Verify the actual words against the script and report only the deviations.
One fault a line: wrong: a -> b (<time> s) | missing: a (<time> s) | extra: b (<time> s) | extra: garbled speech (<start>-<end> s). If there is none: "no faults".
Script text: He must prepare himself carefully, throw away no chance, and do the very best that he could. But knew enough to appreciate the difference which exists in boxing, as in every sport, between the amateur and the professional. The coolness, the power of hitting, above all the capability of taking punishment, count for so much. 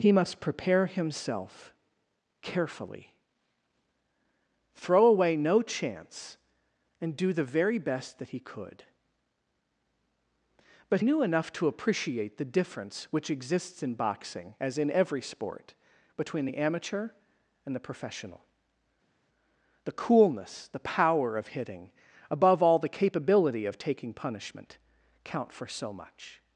no faults